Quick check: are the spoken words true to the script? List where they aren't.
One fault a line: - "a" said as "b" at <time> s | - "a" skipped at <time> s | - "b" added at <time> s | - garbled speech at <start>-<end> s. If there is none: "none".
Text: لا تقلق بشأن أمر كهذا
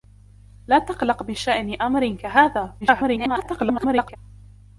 - garbled speech at 2.8-4.2 s